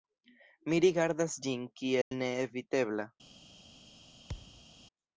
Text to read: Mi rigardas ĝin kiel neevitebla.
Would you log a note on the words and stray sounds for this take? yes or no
yes